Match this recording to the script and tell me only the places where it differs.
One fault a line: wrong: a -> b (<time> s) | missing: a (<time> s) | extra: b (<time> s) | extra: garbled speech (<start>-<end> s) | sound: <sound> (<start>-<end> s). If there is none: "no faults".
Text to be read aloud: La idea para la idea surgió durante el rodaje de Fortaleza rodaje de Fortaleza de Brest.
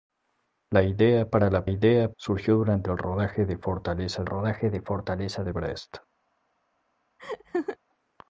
sound: laugh (7.2-7.8 s)